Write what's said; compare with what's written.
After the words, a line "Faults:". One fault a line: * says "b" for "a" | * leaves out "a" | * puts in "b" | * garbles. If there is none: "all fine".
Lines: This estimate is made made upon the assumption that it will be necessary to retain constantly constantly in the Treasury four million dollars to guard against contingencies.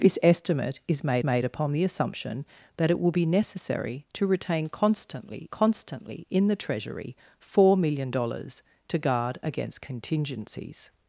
This estimate is made made upon the assumption that it will be necessary to retain constantly constantly in the Treasury four million dollars to guard against contingencies.
Faults:
all fine